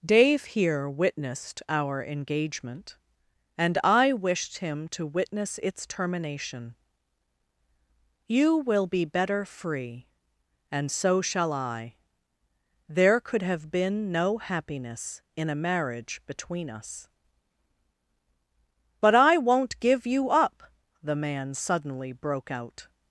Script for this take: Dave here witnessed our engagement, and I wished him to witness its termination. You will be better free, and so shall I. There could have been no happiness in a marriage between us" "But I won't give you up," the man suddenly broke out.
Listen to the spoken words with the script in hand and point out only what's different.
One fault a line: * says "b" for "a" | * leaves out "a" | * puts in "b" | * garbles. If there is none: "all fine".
all fine